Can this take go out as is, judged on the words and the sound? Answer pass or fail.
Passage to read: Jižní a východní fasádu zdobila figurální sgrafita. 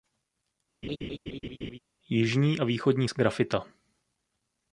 fail